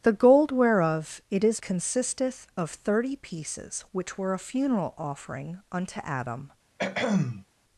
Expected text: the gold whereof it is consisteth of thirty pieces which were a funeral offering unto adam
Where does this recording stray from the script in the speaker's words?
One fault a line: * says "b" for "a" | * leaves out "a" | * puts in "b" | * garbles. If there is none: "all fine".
all fine